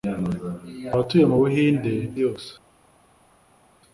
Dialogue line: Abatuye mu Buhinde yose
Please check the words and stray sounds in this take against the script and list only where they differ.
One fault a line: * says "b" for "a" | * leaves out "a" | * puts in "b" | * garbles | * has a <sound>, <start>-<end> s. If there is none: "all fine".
all fine